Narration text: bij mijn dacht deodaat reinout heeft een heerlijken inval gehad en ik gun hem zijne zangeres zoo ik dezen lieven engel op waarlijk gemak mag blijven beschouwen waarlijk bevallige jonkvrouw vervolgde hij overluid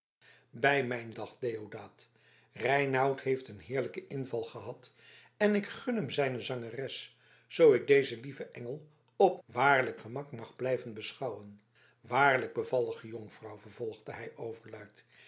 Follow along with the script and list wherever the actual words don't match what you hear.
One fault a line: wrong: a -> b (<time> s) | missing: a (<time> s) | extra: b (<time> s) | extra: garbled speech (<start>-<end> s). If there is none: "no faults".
no faults